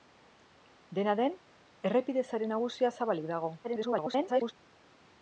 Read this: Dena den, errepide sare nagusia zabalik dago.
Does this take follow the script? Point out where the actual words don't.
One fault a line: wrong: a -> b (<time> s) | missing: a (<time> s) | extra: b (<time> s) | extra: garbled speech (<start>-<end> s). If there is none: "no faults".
extra: garbled speech (3.6-4.5 s)